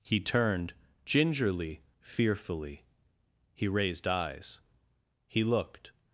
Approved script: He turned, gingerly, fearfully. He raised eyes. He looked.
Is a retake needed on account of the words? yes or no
no